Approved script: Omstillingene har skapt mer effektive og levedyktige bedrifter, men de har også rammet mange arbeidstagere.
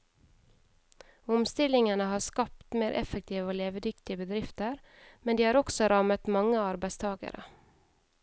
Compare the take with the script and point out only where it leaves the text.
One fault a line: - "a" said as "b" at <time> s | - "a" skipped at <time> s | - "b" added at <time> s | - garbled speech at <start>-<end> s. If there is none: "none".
none